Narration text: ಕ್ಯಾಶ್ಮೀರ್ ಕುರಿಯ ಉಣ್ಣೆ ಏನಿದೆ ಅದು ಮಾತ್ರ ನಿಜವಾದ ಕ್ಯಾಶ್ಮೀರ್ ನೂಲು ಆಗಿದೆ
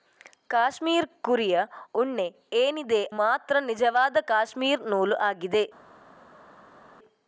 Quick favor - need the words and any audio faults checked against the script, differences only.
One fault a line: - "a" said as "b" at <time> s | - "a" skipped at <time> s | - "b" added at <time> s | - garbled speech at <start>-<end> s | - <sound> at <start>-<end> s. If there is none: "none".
- "ಅದು" skipped at 3.0 s